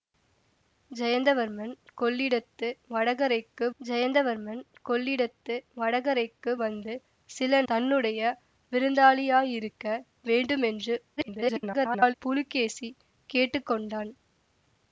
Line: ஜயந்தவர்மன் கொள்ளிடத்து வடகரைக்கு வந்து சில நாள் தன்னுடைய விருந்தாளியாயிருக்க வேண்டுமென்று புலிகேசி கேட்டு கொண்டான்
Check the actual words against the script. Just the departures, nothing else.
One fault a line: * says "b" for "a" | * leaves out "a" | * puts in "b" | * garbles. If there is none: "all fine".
* puts in "ஜயந்தவர்மன் கொள்ளிடத்து வடகரைக்கு"
* leaves out "நாள்"
* garbles